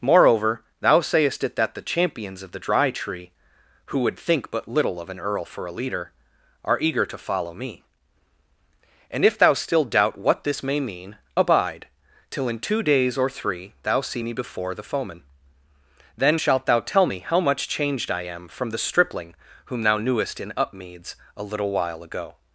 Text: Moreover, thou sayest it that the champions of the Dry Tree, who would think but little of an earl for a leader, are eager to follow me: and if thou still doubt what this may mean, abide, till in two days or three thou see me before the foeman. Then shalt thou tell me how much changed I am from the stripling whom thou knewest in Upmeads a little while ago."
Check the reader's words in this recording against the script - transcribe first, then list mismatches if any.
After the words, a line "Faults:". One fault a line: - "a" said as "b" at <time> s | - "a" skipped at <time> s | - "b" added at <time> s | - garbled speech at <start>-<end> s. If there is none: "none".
Moreover, thou sayest it that the champions of the Dry Tree, who would think but little of an earl for a leader, are eager to follow me: and if thou still doubt what this may mean, abide, till in two days or three thou see me before the foeman. Then shalt thou tell me how much changed I am from the stripling whom thou knewest in Upmeads a little while ago."
Faults:
none